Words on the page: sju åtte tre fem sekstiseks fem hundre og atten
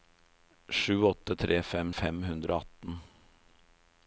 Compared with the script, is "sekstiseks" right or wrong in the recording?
wrong